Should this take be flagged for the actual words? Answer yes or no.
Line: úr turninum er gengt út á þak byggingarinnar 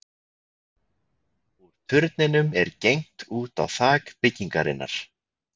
no